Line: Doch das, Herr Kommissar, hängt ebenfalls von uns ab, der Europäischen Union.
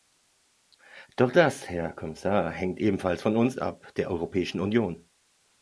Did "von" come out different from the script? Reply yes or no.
no